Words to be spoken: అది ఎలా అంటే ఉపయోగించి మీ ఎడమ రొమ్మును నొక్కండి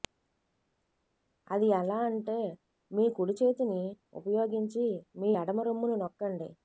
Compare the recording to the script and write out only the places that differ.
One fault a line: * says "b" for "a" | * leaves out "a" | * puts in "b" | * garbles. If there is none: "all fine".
* puts in "మీ కుడి చేతిని"